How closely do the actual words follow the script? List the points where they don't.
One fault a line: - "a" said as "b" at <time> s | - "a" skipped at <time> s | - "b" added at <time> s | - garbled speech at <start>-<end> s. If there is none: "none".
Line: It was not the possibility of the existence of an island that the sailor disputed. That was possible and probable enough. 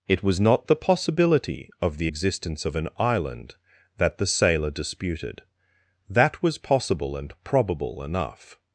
none